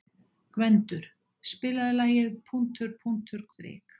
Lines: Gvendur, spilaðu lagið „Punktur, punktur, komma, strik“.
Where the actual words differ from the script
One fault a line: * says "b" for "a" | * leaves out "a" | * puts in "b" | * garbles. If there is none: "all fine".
* leaves out "komma"